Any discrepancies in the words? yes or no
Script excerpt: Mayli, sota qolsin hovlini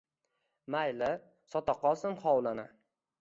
no